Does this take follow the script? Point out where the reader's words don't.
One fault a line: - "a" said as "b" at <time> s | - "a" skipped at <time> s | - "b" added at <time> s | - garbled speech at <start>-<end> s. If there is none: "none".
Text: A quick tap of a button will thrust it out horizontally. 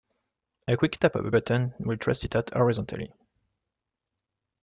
none